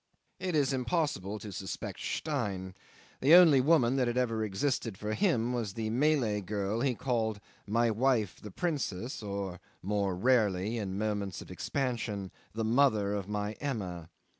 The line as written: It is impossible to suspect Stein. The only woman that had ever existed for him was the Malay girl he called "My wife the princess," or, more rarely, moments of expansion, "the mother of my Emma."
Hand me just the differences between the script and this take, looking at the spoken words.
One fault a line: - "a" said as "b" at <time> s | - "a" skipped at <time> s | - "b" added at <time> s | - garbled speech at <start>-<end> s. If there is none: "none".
- "in" added at 10.8 s